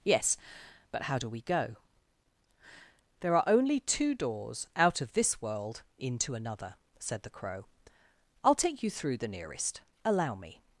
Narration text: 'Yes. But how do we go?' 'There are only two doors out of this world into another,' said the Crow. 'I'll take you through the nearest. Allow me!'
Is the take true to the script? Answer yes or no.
yes